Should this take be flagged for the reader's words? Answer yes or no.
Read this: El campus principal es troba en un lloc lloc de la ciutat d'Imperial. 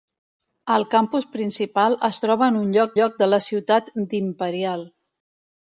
no